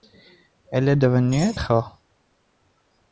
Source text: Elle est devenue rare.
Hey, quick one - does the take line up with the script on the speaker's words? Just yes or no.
yes